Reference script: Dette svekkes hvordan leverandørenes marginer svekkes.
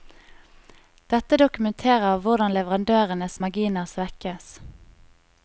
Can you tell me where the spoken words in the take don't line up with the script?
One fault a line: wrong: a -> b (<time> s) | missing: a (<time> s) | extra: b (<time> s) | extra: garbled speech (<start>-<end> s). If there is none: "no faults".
wrong: svekkes -> dokumenterer (1.4 s)